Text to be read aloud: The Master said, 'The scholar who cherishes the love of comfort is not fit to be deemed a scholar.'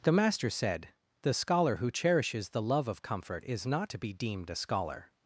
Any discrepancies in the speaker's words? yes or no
yes